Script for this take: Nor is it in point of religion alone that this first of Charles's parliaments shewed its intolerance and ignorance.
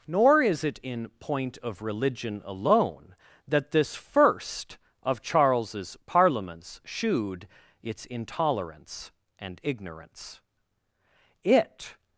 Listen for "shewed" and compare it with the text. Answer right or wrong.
right